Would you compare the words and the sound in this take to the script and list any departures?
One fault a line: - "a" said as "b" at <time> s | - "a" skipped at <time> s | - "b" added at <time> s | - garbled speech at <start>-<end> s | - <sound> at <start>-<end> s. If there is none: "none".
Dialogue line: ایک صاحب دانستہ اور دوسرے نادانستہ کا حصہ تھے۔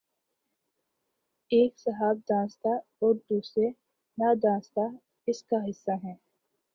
- "اس" added at 5.3 s
- "تھے" said as "ہیں" at 6.0 s